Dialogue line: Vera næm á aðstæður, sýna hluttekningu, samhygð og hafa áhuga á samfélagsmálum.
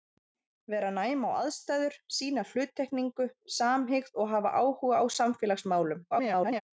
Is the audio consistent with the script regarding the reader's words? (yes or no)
no